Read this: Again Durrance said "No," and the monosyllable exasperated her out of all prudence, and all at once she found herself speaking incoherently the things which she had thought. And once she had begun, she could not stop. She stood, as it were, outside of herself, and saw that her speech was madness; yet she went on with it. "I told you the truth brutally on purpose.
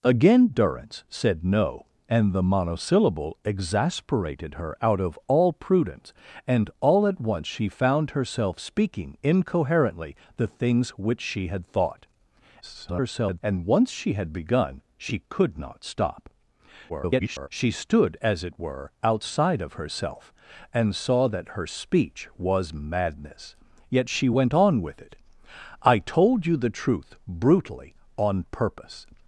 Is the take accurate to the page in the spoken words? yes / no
no